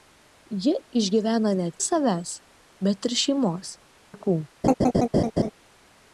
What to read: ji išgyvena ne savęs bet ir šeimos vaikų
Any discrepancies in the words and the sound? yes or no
yes